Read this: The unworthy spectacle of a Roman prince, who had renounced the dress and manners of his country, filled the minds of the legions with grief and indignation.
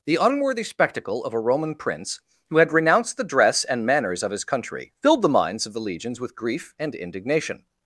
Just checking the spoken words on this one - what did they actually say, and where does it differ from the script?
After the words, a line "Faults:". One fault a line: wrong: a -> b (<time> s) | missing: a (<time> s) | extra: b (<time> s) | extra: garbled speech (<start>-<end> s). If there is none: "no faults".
The unworthy spectacle of a Roman prince, who had renounced the dress and manners of his country, filled the minds of the legions with grief and indignation.
Faults:
no faults